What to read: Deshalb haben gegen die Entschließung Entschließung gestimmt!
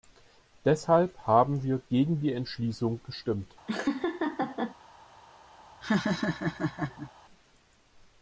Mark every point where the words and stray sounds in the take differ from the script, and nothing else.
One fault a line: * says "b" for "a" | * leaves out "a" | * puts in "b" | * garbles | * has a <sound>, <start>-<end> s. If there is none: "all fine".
* puts in "wir"
* leaves out "Entschließung"
* has a laugh, 3.7-4.8 s
* has a laugh, 5.8-7.1 s